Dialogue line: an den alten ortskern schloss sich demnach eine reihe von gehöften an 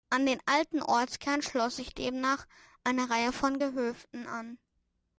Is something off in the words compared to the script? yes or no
no